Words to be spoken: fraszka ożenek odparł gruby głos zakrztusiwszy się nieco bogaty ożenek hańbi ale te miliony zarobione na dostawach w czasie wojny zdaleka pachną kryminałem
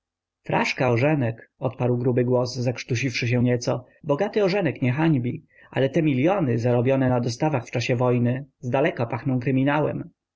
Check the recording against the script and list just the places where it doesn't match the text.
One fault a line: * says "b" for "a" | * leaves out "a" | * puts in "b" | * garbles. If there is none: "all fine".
* puts in "nie"